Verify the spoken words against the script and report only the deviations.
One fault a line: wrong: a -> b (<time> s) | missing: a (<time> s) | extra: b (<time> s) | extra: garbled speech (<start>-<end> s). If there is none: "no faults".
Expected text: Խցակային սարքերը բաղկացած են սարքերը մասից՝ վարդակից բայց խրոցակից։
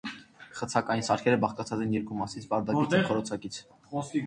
wrong: սարքերը -> երկու (2.0 s)
wrong: բայց -> և (3.0 s)